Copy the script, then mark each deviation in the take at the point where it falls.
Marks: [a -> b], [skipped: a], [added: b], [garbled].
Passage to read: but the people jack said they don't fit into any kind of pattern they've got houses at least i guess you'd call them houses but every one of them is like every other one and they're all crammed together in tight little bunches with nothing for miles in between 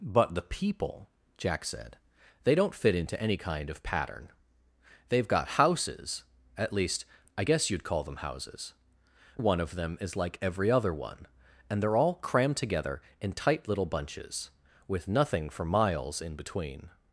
but the people jack said they don't fit into any kind of pattern they've got houses at least i guess you'd call them houses [skipped: but every] one of them is like every other one and they're all crammed together in tight little bunches with nothing for miles in between